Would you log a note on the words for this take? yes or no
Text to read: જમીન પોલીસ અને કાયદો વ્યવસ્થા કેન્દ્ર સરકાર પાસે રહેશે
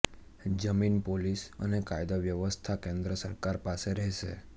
no